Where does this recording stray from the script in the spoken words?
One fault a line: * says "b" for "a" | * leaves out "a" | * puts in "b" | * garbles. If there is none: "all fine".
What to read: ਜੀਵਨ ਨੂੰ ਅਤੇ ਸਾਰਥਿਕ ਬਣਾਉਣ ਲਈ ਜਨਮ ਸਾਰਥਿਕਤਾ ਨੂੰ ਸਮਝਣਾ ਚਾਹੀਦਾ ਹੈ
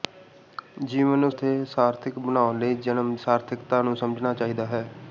all fine